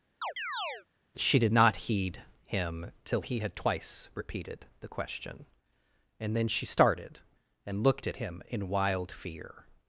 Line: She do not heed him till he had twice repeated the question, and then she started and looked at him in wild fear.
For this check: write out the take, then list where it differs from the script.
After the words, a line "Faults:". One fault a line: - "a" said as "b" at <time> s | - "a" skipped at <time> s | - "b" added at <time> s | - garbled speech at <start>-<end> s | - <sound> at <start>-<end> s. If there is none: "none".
She did not heed him till he had twice repeated the question, and then she started and looked at him in wild fear.
Faults:
- chirp at 0.2-0.9 s
- "do" said as "did" at 1.4 s